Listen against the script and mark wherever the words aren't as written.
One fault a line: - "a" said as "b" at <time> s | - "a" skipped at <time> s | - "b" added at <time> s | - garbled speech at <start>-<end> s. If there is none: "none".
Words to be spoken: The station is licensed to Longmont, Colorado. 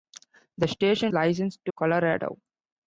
- "is" skipped at 1.1 s
- "Longmont" skipped at 1.7 s